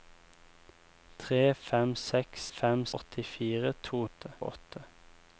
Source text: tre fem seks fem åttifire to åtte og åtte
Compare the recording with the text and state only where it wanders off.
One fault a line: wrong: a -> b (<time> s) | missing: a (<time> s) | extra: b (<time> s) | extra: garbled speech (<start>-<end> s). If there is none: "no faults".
no faults